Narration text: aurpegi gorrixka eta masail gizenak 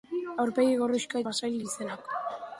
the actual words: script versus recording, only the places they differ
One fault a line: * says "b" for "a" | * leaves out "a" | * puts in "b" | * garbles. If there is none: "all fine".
* leaves out "eta"